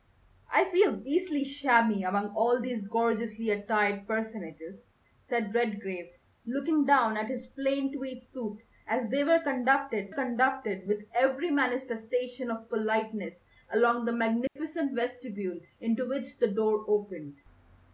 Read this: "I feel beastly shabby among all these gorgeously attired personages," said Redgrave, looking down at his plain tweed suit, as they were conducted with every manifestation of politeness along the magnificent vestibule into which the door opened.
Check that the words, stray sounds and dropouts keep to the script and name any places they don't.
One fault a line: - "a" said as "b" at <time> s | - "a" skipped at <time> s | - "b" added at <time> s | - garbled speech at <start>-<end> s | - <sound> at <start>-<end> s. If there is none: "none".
- "conducted" added at 10.1 s
- dropout at 14.5-14.6 s